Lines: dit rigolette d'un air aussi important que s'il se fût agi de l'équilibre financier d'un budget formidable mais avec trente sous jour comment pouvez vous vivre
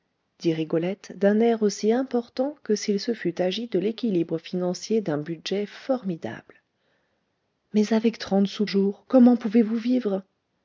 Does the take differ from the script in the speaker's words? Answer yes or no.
no